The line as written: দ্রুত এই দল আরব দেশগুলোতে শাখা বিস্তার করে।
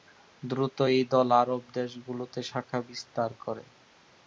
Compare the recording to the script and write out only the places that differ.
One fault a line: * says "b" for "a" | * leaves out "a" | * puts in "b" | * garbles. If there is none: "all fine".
all fine